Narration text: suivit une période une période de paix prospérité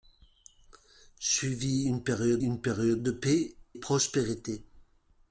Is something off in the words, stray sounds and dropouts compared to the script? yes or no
no